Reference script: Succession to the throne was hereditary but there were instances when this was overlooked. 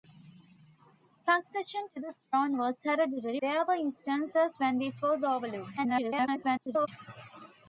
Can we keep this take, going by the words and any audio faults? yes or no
no